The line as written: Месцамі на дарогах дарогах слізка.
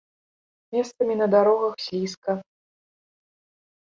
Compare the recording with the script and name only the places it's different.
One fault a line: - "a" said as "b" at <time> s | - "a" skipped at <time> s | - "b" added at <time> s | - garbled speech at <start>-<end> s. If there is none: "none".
- "дарогах" skipped at 1.8 s